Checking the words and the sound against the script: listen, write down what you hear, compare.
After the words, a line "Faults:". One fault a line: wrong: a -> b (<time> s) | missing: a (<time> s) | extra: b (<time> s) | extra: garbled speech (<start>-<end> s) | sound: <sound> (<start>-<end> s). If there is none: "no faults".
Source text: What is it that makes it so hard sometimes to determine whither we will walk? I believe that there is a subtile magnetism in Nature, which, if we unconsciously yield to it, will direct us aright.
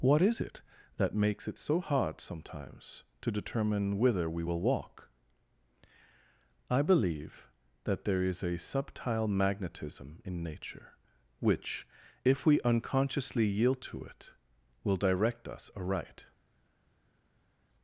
What is it that makes it so hard sometimes to determine whither we will walk? I believe that there is a subtile magnetism in Nature, which, if we unconsciously yield to it, will direct us aright.
Faults:
no faults